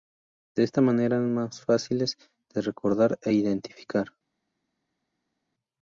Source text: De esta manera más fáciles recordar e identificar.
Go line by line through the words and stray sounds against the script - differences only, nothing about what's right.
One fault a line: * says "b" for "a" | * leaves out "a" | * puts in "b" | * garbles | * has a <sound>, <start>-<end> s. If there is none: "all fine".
* puts in "eran"
* puts in "de"